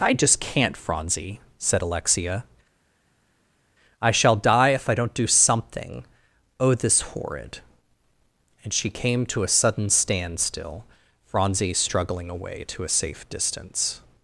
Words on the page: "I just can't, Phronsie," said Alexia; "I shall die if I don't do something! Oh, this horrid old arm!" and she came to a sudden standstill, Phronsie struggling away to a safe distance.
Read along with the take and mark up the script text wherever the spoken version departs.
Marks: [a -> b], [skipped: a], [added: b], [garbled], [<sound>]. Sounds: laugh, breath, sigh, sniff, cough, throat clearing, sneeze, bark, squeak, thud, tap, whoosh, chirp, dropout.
"I just can't, Phronsie," said Alexia; "I shall die if I don't do something! Oh, this horrid [skipped: old arm!"] and she came to a sudden standstill, Phronsie struggling away to a safe distance.